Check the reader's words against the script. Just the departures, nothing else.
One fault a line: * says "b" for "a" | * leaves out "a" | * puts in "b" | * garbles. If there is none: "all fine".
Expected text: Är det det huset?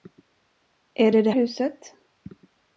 all fine